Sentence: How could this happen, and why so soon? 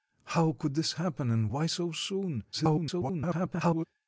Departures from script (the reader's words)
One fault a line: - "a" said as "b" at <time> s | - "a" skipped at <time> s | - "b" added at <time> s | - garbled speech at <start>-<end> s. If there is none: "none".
- garbled speech at 2.5-3.9 s